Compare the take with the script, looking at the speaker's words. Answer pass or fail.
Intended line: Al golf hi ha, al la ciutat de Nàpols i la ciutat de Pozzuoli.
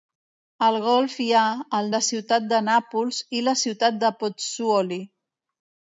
pass